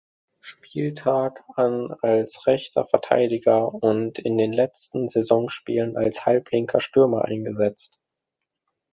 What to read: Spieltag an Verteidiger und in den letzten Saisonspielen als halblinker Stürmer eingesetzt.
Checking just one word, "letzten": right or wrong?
right